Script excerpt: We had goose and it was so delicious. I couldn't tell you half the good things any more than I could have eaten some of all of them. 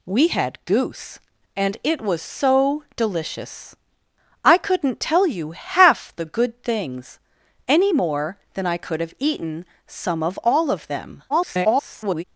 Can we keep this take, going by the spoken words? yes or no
no